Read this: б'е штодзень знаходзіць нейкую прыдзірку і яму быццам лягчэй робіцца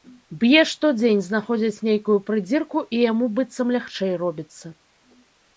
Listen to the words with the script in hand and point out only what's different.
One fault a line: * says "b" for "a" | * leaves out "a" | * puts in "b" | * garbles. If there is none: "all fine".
all fine